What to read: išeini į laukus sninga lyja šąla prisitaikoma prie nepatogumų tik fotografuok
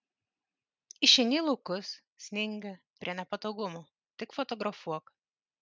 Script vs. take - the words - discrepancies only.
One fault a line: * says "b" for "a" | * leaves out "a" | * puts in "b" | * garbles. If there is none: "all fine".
* leaves out "lyja šąla prisitaikoma"